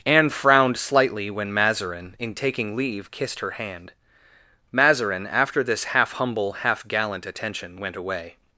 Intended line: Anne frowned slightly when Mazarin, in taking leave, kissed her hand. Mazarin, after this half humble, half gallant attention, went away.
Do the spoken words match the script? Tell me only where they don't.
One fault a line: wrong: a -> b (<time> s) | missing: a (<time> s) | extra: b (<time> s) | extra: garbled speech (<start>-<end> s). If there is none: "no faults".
no faults